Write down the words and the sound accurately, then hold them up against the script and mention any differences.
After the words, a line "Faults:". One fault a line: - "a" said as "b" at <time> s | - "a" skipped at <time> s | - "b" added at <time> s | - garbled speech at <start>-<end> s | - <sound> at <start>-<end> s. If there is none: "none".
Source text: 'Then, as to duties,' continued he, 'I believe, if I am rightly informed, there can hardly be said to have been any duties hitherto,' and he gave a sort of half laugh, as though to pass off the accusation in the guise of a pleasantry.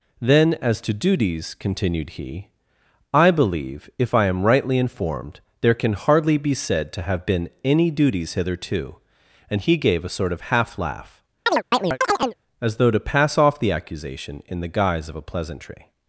'Then, as to duties,' continued he, 'I believe, if I am rightly informed, there can hardly be said to have been any duties hitherto,' and he gave a sort of half laugh, as though to pass off the accusation in the guise of a pleasantry.
Faults:
- chirp at 11.5-12.4 s